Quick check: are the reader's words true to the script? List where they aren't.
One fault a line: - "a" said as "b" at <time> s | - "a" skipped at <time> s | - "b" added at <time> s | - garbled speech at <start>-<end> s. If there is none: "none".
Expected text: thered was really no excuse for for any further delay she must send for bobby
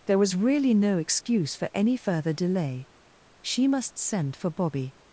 - "thered" said as "there" at 0.1 s
- "for" skipped at 1.7 s